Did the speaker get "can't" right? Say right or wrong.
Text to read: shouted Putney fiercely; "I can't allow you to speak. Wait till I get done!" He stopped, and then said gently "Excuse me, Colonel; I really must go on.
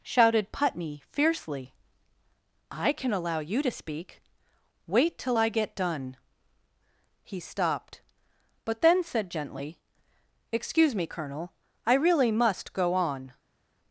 wrong